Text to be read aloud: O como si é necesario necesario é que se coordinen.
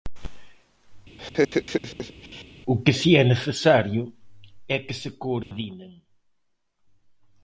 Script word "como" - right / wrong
wrong